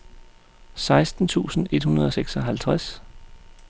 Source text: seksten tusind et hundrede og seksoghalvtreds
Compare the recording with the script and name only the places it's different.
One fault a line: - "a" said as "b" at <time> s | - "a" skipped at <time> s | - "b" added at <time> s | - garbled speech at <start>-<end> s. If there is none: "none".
none